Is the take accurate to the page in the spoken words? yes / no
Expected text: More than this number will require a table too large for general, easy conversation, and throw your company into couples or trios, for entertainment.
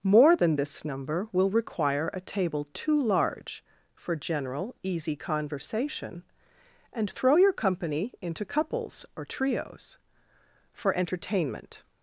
yes